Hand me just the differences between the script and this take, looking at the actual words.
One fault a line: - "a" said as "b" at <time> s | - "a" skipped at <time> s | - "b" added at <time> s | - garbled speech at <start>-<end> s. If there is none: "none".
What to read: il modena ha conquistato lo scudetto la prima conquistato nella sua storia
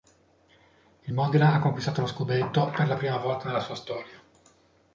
- "per" added at 2.7 s
- "conquistato" said as "volta" at 3.2 s